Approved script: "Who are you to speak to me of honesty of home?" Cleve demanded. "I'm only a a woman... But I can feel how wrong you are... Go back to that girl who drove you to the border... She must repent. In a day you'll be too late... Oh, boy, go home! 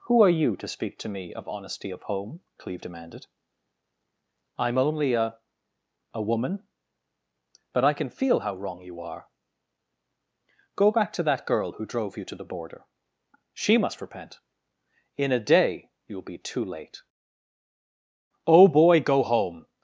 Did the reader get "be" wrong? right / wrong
right